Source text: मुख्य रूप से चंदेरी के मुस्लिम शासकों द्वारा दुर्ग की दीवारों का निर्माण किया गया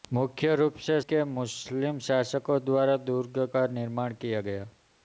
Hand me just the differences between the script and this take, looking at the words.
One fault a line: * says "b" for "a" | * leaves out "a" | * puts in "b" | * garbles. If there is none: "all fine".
* leaves out "चंदेरी"
* leaves out "की दीवारों"